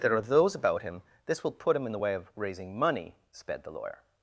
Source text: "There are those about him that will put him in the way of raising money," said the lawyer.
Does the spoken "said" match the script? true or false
false